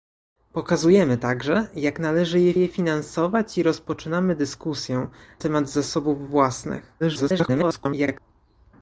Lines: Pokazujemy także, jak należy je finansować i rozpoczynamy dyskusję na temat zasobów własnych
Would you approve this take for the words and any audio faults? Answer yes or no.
no